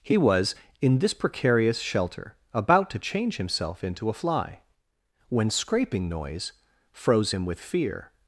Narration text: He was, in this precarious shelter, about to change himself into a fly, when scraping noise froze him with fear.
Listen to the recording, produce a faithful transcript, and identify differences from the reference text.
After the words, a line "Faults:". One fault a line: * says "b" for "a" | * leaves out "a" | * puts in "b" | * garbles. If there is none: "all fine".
He was, in this precarious shelter, about to change himself into a fly, when scraping noise froze him with fear.
Faults:
all fine